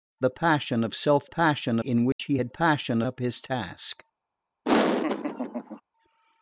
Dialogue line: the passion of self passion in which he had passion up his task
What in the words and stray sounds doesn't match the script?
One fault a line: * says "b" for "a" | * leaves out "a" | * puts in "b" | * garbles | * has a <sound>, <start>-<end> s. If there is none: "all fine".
* has a dropout, 2.1-2.2 s
* has a laugh, 4.6-5.8 s